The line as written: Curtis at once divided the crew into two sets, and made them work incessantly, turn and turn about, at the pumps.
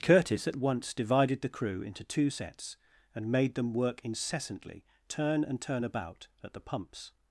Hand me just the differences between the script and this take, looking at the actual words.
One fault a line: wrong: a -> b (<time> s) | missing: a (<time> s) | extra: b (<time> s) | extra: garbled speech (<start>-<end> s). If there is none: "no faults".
no faults